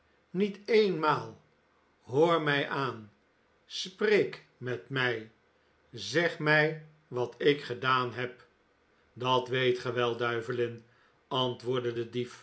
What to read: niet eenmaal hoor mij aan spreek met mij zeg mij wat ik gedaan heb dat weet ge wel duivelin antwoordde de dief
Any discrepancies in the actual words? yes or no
no